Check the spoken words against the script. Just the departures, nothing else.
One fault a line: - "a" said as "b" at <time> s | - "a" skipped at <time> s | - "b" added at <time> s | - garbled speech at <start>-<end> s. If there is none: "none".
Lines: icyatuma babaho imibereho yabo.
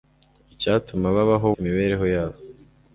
none